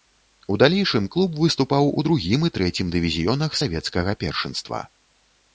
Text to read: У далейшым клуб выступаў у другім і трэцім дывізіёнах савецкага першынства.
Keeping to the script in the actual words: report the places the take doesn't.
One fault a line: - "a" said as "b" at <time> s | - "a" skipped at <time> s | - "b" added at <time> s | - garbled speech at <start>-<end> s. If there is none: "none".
none